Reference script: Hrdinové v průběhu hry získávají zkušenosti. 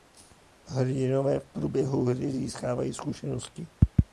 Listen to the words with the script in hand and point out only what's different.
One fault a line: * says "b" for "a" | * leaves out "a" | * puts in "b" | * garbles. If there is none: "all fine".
all fine